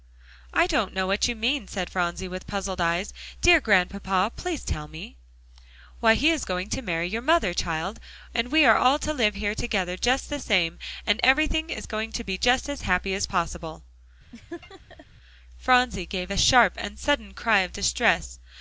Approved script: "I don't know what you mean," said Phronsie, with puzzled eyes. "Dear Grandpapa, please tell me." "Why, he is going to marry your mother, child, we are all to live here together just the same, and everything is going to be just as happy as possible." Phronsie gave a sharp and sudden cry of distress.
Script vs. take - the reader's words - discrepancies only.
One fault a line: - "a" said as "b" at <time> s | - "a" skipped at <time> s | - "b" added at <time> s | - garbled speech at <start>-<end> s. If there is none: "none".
- "and" added at 8.3 s